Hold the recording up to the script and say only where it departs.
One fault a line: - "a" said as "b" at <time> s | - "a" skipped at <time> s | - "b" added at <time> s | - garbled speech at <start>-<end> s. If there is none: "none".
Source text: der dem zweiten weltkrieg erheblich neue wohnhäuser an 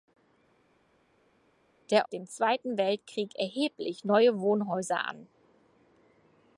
none